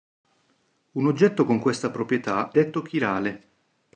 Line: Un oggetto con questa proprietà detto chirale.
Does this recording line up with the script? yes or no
yes